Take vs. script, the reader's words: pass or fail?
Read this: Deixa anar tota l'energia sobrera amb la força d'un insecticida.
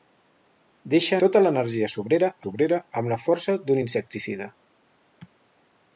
fail